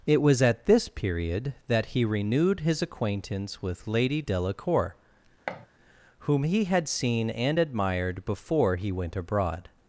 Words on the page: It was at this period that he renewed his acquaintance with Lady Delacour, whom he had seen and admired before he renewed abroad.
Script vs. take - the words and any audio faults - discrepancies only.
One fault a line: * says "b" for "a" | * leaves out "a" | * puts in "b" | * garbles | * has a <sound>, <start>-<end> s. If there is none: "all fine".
* has a thud, 5.5-5.7 s
* says "went" for "renewed"